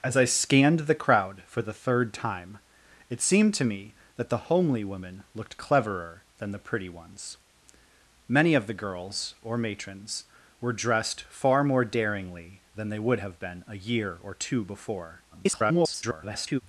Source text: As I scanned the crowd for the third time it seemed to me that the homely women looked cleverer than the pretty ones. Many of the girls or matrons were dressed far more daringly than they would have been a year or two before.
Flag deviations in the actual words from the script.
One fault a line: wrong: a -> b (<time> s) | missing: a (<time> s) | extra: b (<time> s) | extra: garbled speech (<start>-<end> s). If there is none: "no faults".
extra: garbled speech (15.3-16.6 s)